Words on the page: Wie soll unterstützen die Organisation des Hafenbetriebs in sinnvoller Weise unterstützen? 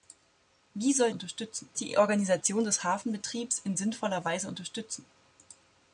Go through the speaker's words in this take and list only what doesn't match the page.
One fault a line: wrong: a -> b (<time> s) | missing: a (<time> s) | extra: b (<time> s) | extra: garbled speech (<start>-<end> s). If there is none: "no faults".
no faults